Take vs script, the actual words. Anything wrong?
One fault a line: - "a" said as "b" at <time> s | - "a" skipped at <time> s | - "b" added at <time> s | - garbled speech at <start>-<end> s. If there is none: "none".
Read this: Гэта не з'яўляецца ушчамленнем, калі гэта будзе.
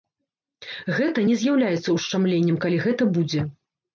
none